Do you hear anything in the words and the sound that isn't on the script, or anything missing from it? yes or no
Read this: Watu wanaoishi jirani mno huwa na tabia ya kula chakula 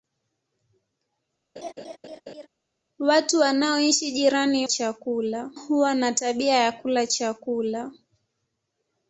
yes